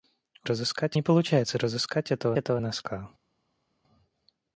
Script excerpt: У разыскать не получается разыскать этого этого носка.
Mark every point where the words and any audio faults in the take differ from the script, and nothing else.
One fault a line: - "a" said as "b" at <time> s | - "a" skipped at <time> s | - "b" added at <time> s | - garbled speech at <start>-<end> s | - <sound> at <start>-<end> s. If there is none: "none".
none